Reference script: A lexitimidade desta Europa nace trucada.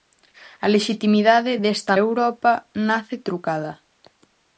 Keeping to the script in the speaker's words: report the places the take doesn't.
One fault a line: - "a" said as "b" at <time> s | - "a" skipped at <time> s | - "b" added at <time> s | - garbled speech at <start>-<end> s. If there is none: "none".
none